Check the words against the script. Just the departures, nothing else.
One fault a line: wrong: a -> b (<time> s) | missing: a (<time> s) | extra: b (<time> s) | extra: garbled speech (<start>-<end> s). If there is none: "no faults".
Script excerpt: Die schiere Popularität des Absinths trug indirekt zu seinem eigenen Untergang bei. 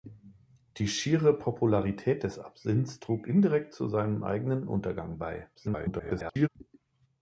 extra: garbled speech (5.5-6.5 s)